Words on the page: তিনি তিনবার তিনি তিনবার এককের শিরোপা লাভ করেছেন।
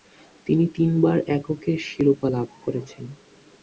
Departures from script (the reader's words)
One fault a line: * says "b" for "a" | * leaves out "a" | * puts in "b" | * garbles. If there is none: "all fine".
* leaves out "তিনি তিনবার"